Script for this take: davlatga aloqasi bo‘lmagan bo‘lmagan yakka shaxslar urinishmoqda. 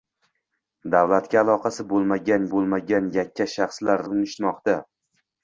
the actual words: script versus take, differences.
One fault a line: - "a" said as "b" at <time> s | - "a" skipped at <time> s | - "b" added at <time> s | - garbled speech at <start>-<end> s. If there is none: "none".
none